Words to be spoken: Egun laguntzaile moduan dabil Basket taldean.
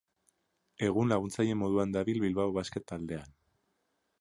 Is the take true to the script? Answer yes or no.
no